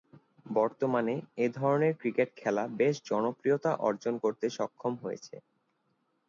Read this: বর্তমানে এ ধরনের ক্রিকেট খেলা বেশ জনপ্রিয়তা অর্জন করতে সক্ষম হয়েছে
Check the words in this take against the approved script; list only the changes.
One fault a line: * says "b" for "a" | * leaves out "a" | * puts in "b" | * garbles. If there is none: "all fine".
all fine